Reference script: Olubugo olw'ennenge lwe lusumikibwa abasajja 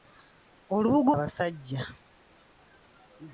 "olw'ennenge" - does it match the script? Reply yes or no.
no